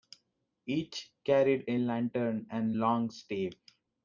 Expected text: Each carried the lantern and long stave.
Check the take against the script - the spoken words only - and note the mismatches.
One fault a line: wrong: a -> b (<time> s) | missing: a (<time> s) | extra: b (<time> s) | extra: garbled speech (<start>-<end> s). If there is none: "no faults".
wrong: the -> a (1.7 s)